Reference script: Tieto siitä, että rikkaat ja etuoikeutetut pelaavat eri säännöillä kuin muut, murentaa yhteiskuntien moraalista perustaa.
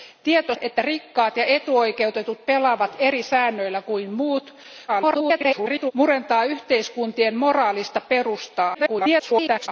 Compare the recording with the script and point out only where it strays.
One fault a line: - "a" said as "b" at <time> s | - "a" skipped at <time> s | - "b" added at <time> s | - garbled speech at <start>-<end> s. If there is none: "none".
- "siitä" skipped at 0.6 s
- garbled speech at 4.9-5.9 s
- garbled speech at 8.7-9.7 s